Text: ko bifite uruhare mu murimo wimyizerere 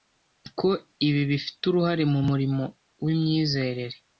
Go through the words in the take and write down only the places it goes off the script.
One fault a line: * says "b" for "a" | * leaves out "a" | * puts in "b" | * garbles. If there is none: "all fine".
* puts in "ibi"